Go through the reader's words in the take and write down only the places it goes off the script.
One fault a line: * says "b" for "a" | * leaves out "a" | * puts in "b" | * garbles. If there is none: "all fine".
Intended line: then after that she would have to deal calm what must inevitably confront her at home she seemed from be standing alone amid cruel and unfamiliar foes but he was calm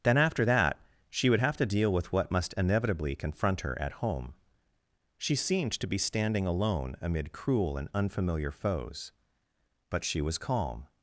* says "with" for "calm"
* says "to" for "from"
* says "she" for "he"